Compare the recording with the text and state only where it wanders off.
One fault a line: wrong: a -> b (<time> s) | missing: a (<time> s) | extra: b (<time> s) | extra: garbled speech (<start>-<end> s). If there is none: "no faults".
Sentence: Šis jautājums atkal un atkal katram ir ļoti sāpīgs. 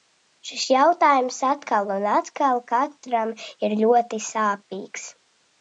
no faults